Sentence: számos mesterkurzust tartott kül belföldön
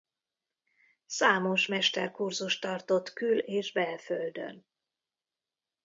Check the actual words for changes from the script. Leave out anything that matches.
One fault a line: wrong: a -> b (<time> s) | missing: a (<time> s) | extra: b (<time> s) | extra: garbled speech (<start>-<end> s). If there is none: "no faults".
extra: és (3.5 s)